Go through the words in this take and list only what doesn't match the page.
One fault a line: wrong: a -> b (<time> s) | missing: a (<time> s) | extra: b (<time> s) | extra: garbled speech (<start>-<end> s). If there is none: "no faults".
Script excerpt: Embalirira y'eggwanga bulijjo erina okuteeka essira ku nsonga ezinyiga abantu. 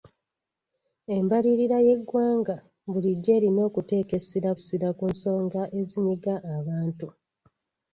extra: essira (4.6 s)